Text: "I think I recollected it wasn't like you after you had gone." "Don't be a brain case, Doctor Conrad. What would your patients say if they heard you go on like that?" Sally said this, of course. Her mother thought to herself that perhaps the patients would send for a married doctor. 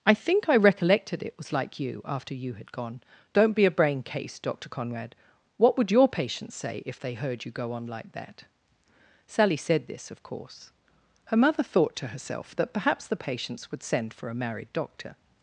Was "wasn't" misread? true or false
true